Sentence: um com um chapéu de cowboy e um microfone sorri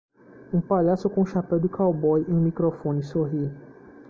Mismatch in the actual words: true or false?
true